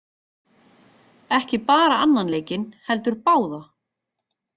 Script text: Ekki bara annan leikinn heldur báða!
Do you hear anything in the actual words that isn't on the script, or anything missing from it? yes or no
no